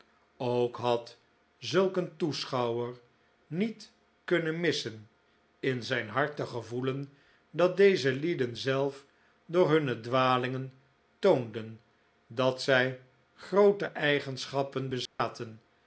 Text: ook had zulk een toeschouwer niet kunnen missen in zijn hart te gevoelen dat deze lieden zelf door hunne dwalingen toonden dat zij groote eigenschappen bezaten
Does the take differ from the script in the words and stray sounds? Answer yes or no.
yes